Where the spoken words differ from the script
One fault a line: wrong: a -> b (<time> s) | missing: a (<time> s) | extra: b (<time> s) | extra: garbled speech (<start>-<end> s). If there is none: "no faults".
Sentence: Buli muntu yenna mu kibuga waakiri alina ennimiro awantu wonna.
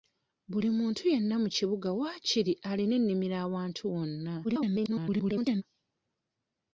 extra: garbled speech (4.4-5.6 s)